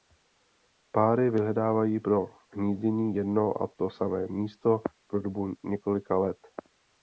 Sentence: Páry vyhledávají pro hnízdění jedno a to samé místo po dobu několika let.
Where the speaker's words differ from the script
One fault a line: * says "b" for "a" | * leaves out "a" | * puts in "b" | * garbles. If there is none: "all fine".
all fine